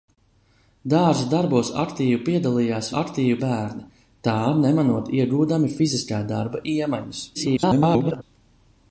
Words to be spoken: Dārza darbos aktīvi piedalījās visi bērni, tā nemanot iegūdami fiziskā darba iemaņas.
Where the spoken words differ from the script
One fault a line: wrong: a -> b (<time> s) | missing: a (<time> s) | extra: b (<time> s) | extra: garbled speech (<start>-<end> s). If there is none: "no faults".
wrong: visi -> aktīvi (3.0 s)
extra: garbled speech (7.3-8.2 s)